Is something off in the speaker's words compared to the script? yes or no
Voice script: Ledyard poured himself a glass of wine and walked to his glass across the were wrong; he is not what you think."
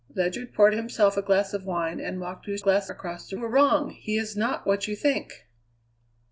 no